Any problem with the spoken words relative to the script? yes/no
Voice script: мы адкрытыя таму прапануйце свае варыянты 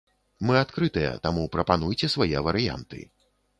no